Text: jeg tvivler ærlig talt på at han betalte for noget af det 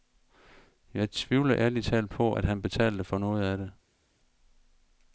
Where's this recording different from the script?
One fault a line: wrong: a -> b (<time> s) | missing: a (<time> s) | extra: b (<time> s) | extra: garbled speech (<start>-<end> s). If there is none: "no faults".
no faults